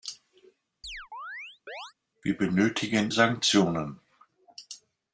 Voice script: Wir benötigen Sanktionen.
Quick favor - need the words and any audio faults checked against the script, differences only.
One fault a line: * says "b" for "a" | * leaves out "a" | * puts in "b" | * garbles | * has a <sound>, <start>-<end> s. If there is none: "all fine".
* has a chirp, 0.8-1.9 s